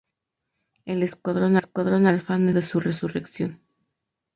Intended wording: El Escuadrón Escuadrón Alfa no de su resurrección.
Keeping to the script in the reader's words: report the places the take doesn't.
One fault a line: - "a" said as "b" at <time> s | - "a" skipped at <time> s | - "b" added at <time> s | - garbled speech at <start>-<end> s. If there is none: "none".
none